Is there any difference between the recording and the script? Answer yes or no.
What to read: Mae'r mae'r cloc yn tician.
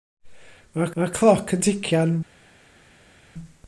no